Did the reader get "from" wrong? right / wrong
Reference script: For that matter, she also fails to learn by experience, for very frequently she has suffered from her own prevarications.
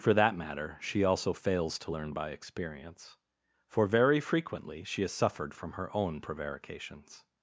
right